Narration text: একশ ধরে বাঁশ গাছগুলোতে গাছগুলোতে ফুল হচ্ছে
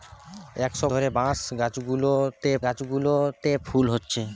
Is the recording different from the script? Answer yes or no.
no